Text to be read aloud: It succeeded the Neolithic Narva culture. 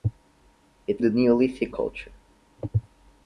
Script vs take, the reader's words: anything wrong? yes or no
yes